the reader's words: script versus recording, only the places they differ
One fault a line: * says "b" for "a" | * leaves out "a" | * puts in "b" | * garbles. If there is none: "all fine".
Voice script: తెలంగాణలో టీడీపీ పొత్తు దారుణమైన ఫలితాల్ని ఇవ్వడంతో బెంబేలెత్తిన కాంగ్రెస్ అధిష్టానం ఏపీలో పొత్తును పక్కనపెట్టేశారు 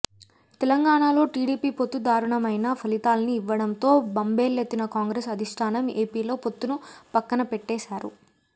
all fine